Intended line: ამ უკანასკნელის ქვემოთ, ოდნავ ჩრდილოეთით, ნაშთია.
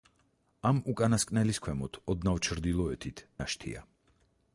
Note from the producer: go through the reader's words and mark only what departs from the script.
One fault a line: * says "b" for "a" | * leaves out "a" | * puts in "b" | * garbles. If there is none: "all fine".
all fine